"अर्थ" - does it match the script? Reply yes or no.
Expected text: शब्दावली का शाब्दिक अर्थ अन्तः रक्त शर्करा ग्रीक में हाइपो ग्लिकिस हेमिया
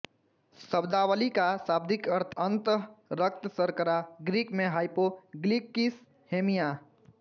yes